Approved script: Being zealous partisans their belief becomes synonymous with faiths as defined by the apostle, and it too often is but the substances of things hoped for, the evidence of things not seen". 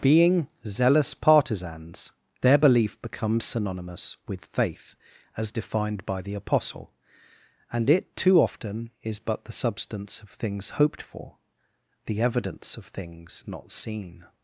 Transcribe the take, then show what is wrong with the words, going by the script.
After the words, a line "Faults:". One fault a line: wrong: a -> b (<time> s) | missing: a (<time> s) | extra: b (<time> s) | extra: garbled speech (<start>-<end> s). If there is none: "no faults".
Being zealous partisans their belief becomes synonymous with faith as defined by the apostle, and it too often is but the substance of things hoped for, the evidence of things not seen".
Faults:
wrong: faiths -> faith (4.5 s)
wrong: substances -> substance (9.5 s)